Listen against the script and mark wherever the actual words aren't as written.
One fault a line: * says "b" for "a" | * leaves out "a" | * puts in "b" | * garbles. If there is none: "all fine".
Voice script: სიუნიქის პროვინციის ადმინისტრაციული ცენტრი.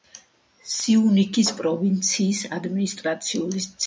all fine